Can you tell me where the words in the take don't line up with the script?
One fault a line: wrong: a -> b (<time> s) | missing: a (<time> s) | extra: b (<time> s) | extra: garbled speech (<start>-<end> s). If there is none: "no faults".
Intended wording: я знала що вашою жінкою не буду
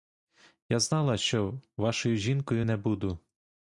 no faults